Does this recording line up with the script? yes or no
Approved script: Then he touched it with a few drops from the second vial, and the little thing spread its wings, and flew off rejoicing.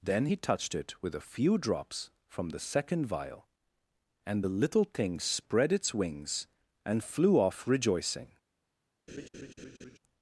yes